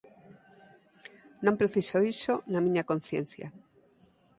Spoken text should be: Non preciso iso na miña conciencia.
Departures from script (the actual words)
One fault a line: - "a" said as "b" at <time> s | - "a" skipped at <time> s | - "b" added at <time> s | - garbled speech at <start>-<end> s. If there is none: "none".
none